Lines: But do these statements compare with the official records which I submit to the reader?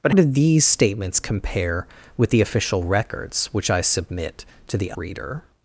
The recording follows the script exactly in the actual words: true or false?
true